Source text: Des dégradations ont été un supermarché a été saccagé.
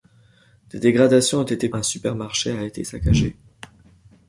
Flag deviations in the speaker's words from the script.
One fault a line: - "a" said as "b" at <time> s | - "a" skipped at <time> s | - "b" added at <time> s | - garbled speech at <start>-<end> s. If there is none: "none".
none